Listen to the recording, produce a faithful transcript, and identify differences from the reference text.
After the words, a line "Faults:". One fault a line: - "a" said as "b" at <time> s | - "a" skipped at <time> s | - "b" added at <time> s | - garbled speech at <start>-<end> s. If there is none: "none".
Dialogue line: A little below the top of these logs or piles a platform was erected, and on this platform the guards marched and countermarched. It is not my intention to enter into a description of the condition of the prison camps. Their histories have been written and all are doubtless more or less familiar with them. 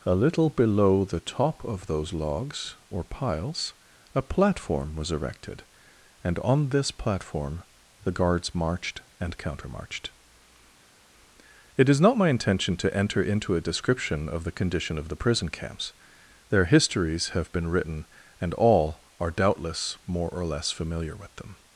A little below the top of those logs or piles a platform was erected, and on this platform the guards marched and countermarched. It is not my intention to enter into a description of the condition of the prison camps. Their histories have been written and all are doubtless more or less familiar with them.
Faults:
- "these" said as "those" at 1.9 s